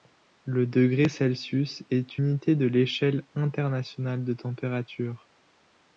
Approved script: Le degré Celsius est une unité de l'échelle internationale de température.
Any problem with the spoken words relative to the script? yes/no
yes